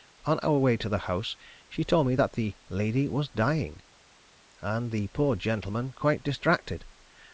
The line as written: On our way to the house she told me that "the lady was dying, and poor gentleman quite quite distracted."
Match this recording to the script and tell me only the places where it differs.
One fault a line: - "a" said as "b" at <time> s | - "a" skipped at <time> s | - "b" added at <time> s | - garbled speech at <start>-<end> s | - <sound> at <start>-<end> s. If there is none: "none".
- "the" added at 4.9 s
- "quite" skipped at 6.2 s